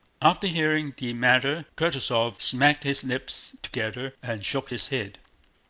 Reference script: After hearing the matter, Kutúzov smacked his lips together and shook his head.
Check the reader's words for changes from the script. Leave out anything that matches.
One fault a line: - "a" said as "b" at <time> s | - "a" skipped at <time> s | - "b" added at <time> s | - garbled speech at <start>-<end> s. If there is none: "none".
none